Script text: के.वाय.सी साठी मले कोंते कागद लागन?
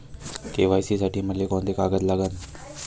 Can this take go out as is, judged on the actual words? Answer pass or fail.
pass